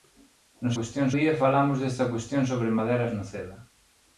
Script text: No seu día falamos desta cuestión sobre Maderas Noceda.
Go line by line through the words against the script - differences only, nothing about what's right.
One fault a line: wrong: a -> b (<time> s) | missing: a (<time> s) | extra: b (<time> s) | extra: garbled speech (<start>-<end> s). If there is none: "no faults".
wrong: seu -> cuestión (0.8 s)